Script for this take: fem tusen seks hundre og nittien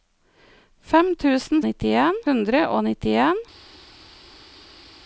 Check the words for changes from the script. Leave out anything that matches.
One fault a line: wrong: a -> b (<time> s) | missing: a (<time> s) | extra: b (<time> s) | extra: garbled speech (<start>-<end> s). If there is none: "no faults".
wrong: seks -> nittien (1.7 s)